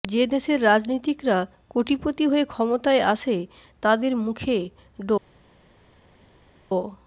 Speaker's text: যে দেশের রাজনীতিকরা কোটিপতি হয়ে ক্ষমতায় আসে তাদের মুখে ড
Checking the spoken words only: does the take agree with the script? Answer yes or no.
yes